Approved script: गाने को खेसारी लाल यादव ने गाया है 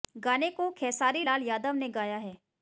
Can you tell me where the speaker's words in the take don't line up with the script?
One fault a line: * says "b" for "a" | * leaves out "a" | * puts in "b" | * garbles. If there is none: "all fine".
all fine